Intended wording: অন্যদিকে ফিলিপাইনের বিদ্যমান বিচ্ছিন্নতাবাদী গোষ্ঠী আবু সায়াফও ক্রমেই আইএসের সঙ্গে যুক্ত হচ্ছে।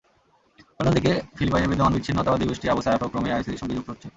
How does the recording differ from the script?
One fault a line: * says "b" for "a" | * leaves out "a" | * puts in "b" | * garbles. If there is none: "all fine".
all fine